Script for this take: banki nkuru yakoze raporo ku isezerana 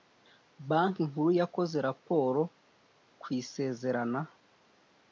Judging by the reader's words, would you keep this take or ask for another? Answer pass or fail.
pass